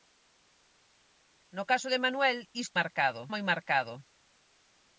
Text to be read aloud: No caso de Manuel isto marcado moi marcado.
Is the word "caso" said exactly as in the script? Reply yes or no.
yes